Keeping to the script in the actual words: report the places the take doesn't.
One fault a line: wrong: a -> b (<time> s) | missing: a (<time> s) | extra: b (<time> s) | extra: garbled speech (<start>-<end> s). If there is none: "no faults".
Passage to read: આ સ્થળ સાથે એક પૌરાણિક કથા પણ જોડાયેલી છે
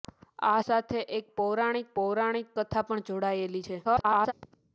missing: સ્થળ (0.6 s)
extra: પૌરાણિક (1.9 s)
extra: garbled speech (3.8-4.3 s)